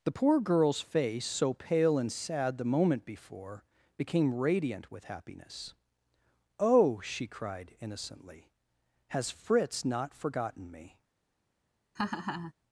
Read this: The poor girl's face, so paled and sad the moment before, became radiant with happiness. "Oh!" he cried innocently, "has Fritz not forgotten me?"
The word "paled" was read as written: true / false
false